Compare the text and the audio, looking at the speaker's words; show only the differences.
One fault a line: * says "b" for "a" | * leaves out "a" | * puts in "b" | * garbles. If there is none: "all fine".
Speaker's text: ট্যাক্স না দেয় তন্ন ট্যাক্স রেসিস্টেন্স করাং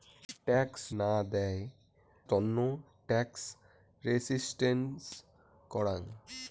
all fine